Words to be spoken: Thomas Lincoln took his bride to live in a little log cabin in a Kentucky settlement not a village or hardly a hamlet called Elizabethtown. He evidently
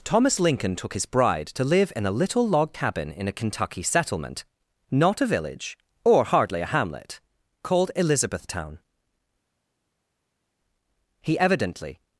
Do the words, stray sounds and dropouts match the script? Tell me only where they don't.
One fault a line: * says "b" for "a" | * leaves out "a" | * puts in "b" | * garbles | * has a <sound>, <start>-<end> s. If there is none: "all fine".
all fine